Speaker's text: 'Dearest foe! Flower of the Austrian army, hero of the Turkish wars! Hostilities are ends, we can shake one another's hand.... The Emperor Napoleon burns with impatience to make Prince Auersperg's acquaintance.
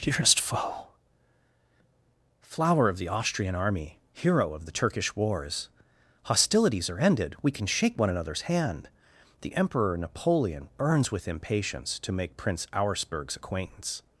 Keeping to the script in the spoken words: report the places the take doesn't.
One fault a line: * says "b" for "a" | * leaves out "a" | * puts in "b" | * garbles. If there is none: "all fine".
* says "ended" for "ends"